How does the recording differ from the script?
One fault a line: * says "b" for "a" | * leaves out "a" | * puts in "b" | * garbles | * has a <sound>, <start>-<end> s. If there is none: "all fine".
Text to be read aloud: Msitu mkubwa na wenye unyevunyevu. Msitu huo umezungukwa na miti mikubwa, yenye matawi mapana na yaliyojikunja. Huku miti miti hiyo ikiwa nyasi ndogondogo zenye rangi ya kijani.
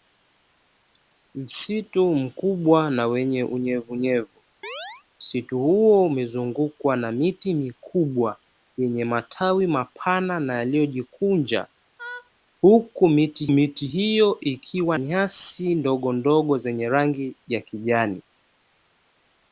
* has a chirp, 4.6-5.0 s
* has a laugh, 12.0-12.3 s